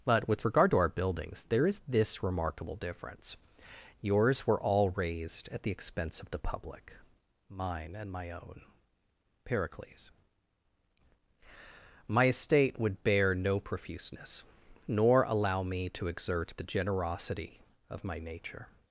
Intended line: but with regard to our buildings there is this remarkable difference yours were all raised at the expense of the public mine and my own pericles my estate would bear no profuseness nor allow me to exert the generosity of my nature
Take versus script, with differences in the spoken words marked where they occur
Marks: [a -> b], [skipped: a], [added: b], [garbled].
but with regard to our buildings there is this remarkable difference yours were all raised at the expense of the public mine and my own pericles my estate would bear no profuseness nor allow me to exert the generosity of my nature